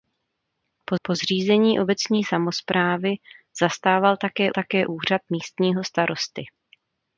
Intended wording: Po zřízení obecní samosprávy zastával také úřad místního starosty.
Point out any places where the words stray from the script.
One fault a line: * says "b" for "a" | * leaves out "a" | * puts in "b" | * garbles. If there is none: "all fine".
* puts in "po"
* puts in "také"